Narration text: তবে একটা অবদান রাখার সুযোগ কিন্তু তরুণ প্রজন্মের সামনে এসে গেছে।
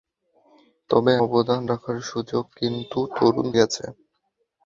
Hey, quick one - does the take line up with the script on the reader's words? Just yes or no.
no